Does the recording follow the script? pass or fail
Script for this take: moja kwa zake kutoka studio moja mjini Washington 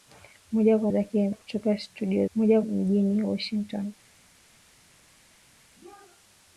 pass